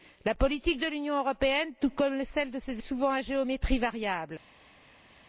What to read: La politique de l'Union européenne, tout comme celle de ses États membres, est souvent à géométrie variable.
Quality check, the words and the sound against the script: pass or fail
fail